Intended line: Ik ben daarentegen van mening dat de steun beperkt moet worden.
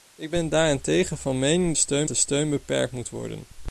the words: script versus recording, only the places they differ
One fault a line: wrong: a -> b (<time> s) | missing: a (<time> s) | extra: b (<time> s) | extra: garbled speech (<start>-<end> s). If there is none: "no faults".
wrong: dat -> steun (1.7 s)